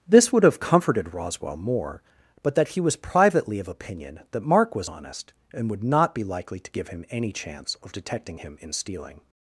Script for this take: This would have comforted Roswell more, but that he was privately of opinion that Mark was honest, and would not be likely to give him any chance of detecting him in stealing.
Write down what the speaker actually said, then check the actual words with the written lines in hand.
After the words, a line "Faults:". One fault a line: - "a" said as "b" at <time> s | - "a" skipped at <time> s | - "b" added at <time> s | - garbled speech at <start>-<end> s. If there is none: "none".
This would have comforted Roswell more, but that he was privately of opinion that Mark was honest, and would not be likely to give him any chance of detecting him in stealing.
Faults:
none